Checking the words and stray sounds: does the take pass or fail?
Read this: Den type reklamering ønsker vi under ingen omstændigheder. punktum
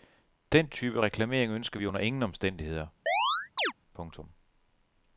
fail